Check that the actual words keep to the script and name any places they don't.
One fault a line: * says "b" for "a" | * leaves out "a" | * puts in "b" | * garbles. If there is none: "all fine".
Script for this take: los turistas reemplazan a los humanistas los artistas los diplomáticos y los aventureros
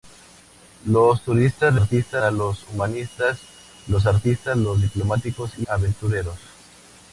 * says "artistas" for "reemplazan"
* leaves out "los"